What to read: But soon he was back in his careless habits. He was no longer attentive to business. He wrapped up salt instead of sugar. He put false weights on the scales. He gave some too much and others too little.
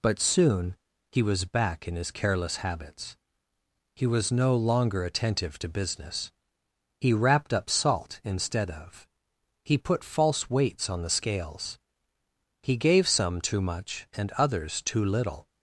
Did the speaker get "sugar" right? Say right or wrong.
wrong